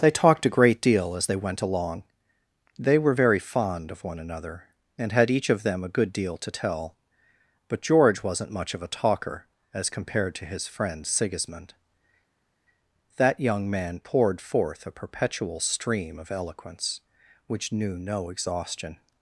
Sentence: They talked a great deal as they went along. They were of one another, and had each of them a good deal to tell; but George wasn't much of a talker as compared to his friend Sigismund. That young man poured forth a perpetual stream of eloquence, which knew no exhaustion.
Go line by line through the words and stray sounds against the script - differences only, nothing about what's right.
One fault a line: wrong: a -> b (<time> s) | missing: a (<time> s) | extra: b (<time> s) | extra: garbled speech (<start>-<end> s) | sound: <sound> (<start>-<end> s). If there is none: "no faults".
extra: very fond (3.1 s)